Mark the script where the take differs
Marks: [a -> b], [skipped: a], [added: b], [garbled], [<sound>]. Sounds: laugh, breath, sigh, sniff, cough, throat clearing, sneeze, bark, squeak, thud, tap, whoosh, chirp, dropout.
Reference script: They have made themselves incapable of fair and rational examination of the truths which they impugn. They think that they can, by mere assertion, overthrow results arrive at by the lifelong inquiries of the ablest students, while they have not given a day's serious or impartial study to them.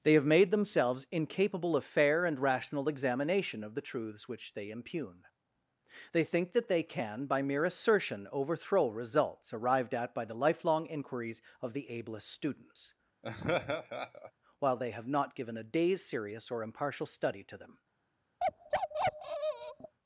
They have made themselves incapable of fair and rational examination of the truths which they impugn. They think that they can, by mere assertion, overthrow results [arrive -> arrived] at by the lifelong inquiries of the ablest students, [laugh] while they have not given a day's serious or impartial study to them. [bark]